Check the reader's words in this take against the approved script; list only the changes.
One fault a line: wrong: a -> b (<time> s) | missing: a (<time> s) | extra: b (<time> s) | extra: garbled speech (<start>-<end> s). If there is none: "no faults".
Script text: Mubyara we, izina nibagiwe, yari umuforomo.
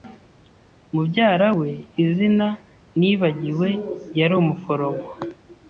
no faults